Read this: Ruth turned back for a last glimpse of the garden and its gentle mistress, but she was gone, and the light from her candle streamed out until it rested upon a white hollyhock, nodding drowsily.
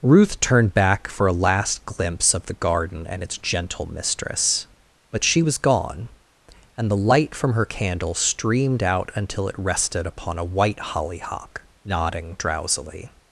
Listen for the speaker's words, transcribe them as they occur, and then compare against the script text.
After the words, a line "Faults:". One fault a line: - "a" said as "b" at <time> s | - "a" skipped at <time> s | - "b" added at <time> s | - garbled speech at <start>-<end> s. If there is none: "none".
Ruth turned back for a last glimpse of the garden and its gentle mistress, but she was gone, and the light from her candle streamed out until it rested upon a white hollyhock, nodding drowsily.
Faults:
none